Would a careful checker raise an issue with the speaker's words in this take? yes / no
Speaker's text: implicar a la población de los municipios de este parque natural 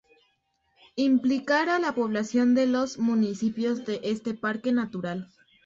no